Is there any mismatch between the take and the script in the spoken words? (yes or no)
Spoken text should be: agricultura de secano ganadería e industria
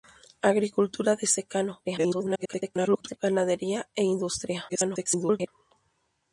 yes